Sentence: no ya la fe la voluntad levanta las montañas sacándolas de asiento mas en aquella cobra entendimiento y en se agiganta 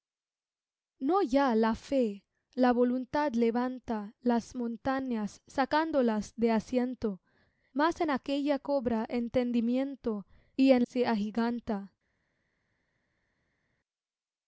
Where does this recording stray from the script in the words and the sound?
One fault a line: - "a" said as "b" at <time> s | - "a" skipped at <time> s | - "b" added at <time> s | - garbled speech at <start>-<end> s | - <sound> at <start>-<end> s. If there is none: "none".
none